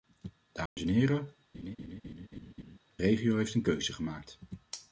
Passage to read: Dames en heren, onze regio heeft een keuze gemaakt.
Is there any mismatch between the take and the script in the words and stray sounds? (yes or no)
yes